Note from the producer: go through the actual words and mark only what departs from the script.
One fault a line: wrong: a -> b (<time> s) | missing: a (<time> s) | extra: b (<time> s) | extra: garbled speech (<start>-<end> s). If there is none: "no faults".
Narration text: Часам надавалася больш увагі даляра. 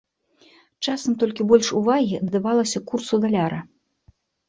wrong: надавалася -> толькі (1.2 s)
extra: надавалася курсу (2.3 s)